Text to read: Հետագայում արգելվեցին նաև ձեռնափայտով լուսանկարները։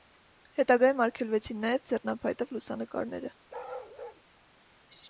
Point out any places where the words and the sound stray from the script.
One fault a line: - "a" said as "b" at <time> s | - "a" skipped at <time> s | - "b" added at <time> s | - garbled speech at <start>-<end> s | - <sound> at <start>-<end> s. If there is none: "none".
- bark at 3.5-4.2 s